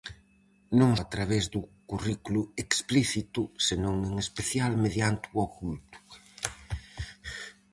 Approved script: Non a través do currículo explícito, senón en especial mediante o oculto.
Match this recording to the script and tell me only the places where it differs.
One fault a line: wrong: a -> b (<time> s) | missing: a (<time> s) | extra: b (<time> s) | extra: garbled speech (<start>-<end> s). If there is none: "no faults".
no faults